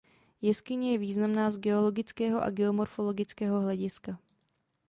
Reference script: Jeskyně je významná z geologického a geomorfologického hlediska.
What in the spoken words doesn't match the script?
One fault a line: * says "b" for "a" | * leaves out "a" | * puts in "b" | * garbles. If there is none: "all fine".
all fine